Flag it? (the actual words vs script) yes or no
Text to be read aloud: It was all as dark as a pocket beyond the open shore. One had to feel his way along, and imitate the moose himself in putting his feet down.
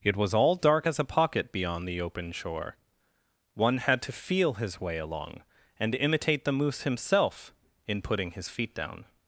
yes